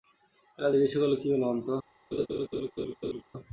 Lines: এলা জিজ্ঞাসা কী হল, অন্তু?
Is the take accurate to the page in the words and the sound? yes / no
no